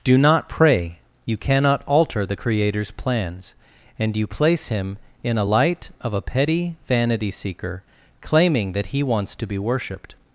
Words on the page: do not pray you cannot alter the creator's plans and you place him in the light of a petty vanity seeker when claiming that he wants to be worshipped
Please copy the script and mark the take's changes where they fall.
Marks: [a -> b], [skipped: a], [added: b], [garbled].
do not pray you cannot alter the creator's plans and you place him in [the -> a] light of a petty vanity seeker [skipped: when] claiming that he wants to be worshipped